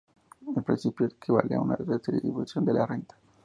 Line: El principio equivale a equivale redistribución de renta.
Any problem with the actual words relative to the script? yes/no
yes